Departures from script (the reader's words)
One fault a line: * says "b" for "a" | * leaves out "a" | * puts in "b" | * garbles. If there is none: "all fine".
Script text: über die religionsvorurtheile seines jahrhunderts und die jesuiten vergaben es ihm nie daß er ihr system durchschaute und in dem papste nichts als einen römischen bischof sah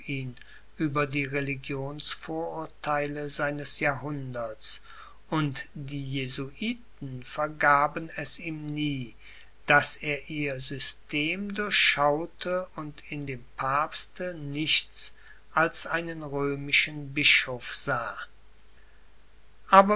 all fine